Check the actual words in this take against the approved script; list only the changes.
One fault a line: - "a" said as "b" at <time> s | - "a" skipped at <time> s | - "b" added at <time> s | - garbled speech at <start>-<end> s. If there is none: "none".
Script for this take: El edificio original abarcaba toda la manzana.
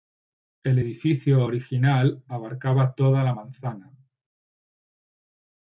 none